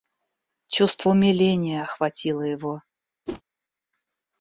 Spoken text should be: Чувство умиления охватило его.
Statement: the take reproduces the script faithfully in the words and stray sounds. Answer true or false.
false